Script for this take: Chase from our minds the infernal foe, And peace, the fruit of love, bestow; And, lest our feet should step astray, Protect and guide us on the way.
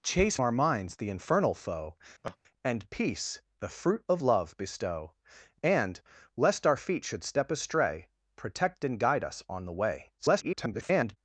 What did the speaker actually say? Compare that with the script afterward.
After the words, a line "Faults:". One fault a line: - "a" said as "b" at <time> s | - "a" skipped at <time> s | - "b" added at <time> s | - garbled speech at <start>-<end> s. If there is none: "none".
Chase our minds the infernal foe, And peace, the fruit of love, bestow; And, lest our feet should step astray, Protect and guide us on the way. [garbled]
Faults:
- "from" skipped at 0.4 s
- garbled speech at 10.2-11.2 s